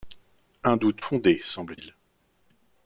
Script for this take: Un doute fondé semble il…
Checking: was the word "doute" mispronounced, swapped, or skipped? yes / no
no